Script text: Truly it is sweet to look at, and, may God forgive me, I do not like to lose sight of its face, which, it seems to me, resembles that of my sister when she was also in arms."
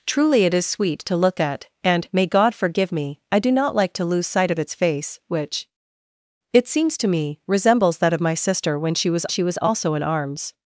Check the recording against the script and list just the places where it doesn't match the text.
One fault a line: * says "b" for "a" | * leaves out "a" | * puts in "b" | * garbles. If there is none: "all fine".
* puts in "she was"